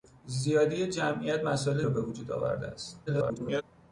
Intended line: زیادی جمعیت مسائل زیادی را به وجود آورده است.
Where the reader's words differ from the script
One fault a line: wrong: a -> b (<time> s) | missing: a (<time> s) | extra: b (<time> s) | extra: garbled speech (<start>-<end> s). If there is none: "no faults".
missing: زیادی (1.8 s)
extra: garbled speech (3.1-3.6 s)